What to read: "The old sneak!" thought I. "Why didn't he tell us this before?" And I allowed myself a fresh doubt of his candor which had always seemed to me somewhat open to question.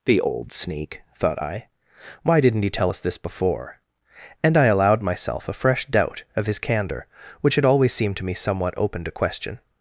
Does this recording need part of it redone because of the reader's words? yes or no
no